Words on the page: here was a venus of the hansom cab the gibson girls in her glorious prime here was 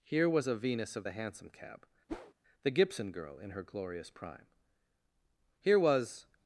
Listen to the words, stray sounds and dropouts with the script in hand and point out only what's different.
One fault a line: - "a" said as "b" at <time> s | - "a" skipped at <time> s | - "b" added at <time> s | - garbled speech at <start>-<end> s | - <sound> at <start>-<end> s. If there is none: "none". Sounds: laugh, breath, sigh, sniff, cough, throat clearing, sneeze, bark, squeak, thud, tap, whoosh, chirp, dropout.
- whoosh at 2.1-2.3 s
- "girls" said as "girl" at 3.1 s